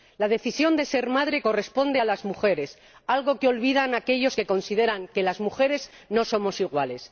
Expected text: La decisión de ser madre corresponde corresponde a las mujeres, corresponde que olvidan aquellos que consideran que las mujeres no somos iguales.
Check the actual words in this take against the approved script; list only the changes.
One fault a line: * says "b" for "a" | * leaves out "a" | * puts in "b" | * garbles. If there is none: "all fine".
* leaves out "corresponde"
* says "algo" for "corresponde"